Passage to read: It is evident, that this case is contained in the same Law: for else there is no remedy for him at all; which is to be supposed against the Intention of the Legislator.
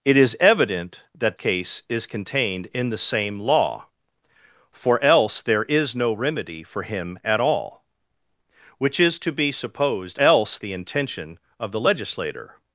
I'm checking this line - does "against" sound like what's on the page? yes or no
no